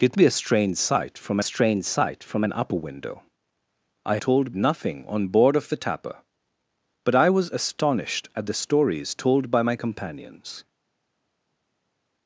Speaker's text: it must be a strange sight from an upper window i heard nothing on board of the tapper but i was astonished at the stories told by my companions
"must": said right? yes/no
no